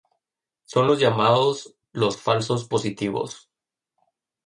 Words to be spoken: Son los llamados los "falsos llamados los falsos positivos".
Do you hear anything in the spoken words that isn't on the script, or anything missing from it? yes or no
yes